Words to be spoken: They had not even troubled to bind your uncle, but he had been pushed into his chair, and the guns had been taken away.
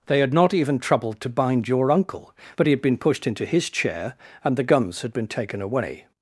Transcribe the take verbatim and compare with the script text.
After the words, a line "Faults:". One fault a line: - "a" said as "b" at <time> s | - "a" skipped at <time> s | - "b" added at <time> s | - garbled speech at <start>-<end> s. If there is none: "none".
They had not even troubled to bind your uncle, but he had been pushed into his chair, and the guns had been taken away.
Faults:
none